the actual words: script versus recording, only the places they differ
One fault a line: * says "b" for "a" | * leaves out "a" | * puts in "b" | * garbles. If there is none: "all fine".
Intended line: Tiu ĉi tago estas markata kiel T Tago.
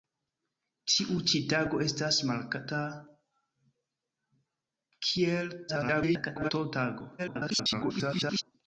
* garbles
* garbles